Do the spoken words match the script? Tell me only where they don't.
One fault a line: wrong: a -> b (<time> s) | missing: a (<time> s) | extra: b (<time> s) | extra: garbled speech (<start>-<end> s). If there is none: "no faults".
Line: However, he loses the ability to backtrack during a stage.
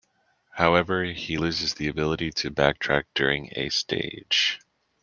no faults